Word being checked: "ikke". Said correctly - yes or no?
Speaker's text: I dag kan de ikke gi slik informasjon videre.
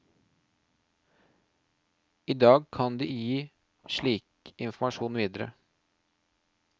no